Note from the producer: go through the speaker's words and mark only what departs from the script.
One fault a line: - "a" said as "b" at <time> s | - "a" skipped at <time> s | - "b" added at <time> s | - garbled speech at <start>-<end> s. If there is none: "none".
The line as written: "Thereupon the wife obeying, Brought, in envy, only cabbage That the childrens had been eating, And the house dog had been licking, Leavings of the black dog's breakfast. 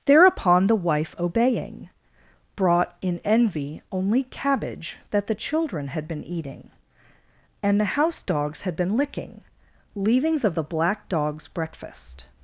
- "childrens" said as "children" at 5.3 s
- "dog" said as "dogs" at 8.2 s